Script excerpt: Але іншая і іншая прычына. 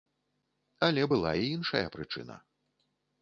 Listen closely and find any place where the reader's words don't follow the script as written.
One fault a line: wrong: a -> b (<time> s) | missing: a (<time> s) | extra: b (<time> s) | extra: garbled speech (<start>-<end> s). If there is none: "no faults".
wrong: іншая -> была (1.1 s)